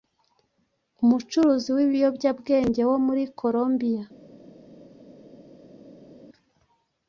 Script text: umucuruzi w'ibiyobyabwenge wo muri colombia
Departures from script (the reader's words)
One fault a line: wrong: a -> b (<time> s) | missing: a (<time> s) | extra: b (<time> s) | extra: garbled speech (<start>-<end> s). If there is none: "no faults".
no faults